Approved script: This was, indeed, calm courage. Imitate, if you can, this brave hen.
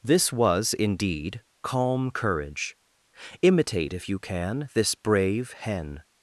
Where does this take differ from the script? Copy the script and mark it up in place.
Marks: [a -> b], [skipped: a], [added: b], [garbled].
This was, indeed, calm courage. Imitate, if you can, this brave hen.